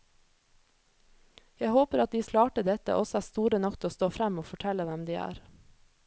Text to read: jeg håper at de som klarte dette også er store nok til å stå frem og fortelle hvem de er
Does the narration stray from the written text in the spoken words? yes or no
yes